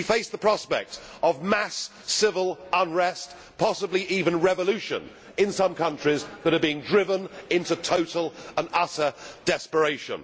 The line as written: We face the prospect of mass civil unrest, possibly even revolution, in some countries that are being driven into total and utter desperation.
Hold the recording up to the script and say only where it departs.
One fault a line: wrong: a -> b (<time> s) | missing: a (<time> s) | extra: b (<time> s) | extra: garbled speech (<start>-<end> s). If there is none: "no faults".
no faults